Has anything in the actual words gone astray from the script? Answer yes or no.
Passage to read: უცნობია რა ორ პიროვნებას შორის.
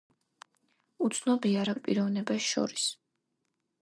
no